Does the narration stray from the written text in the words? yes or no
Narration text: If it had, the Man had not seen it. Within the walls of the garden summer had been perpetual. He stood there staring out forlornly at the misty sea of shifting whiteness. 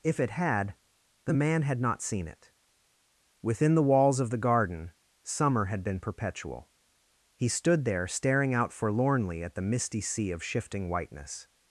no